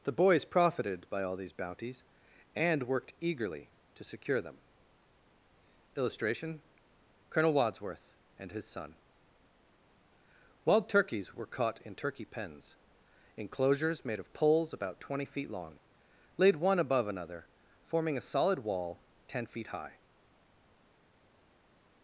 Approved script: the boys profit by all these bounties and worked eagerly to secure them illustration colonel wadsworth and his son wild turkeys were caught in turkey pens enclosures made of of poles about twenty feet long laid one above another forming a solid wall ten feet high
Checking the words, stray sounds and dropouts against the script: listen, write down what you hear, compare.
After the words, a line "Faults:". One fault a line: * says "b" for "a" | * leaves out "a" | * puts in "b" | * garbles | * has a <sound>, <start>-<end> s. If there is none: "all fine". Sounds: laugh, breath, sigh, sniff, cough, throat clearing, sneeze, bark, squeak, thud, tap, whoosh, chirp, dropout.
the boys profited by all these bounties and worked eagerly to secure them illustration colonel wadsworth and his son wild turkeys were caught in turkey pens enclosures made of poles about twenty feet long laid one above another forming a solid wall ten feet high
Faults:
* says "profited" for "profit"
* leaves out "of"